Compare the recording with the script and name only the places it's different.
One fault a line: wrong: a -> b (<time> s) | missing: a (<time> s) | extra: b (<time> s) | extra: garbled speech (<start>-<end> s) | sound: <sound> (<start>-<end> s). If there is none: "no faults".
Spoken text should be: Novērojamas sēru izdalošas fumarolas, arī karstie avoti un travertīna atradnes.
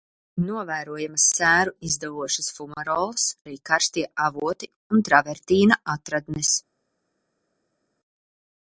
no faults